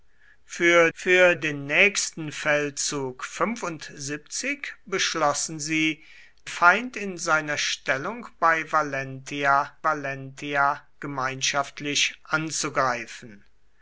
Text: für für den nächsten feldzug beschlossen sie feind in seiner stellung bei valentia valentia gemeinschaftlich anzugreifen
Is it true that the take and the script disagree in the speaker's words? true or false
false